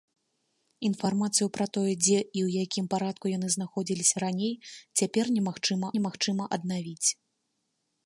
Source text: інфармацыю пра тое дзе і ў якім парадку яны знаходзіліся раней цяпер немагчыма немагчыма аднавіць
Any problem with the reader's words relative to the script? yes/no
no